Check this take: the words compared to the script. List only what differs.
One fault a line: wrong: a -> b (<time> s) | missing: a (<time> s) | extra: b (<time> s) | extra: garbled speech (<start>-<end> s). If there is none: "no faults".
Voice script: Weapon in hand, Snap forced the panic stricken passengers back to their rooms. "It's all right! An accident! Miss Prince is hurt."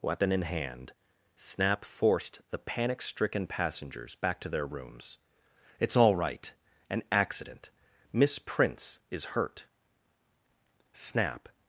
extra: Snap (10.9 s)